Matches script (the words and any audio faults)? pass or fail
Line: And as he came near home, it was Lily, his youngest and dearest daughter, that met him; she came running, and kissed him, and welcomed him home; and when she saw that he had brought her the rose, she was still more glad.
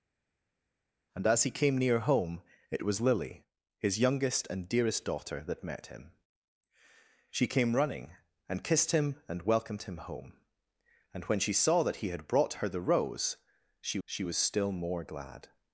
fail